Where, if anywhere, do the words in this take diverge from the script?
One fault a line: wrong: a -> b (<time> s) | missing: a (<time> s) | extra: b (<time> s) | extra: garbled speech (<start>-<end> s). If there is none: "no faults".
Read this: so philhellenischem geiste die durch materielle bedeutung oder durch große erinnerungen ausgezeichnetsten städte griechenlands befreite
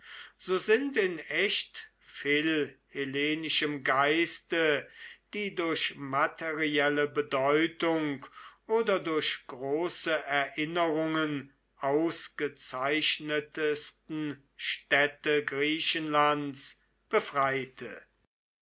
extra: sind in echt (0.6 s)